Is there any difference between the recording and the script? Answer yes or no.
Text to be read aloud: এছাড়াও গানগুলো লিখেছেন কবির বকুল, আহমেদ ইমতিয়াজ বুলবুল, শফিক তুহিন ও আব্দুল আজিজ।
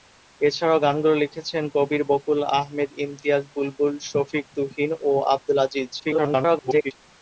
yes